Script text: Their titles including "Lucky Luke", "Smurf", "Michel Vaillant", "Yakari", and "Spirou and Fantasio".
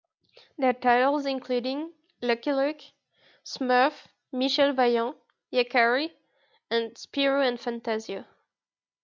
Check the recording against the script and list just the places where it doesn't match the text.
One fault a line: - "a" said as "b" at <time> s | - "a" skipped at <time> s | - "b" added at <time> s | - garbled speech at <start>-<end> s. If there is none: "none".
none